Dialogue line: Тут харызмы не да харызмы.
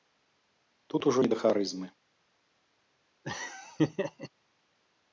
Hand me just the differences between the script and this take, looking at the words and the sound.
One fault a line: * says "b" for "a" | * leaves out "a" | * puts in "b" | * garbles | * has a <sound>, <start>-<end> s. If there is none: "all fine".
* says "ужо" for "харызмы"
* has a laugh, 3.2-4.3 s